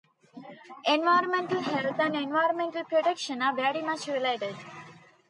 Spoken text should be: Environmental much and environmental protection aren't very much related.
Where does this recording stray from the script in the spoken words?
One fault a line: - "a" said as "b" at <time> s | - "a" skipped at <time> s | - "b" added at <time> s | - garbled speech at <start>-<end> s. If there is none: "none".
- "much" said as "health" at 1.6 s
- "aren't" said as "are" at 3.4 s